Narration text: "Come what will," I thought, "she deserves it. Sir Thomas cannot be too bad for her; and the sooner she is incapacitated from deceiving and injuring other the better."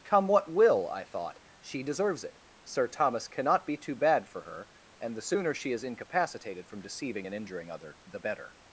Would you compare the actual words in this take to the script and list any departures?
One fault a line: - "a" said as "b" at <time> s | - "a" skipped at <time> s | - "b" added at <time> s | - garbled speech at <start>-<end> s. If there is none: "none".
none